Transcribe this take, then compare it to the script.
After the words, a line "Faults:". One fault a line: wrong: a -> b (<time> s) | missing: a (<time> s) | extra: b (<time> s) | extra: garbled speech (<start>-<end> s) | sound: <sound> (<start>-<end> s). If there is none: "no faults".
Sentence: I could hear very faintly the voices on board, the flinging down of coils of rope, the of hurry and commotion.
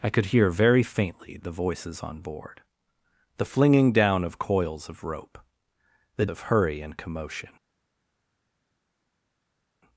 I could hear very faintly the voices on board, the flinging down of coils of rope, the of hurry and commotion.
Faults:
no faults